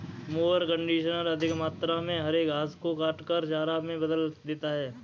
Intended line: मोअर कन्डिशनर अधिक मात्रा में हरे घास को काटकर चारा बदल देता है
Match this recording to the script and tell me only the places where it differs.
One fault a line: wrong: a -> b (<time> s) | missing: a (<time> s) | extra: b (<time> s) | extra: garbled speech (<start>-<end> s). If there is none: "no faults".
extra: में (3.8 s)